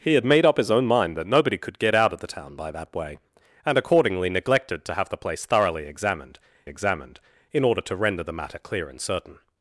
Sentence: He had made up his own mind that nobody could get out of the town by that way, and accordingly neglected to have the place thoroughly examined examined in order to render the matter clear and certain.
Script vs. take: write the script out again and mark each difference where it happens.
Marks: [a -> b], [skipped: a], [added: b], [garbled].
He had made up his own mind that nobody could get out of the town by that way, and accordingly neglected to have the place thoroughly examined examined in order to render the matter clear and certain.